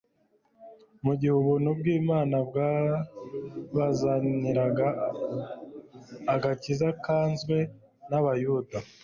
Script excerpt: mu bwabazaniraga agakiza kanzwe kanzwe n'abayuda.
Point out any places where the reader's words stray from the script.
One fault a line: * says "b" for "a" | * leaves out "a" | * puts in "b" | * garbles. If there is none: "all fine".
* puts in "gihe ubuntu bw'Imana"
* leaves out "kanzwe"